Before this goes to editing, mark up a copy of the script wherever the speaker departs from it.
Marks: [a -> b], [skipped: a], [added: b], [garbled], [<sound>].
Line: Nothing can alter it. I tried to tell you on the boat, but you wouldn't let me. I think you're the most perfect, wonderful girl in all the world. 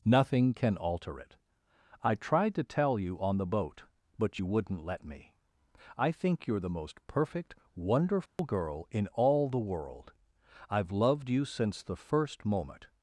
Nothing can alter it. I tried to tell you on the boat, but you wouldn't let me. I think you're the most perfect, wonderful [dropout] girl in all the world. [added: I've loved you since the first moment]